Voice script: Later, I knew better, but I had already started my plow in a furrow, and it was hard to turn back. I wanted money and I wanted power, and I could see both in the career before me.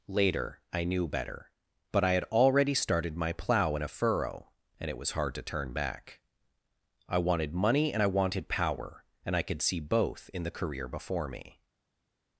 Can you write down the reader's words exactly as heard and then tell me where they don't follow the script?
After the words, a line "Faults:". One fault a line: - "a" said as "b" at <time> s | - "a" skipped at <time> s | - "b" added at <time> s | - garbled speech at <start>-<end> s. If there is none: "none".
Later, I knew better, but I had already started my plow in a furrow, and it was hard to turn back. I wanted money and I wanted power, and I could see both in the career before me.
Faults:
none